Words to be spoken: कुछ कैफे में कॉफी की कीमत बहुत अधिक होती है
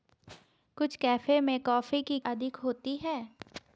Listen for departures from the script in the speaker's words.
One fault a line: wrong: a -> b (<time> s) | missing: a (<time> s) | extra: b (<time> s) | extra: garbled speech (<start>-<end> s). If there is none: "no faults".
missing: कीमत बहुत (2.2 s)